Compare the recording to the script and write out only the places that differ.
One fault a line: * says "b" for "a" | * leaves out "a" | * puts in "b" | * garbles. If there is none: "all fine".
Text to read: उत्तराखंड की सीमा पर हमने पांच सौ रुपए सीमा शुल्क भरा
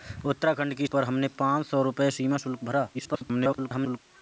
* leaves out "सीमा"
* garbles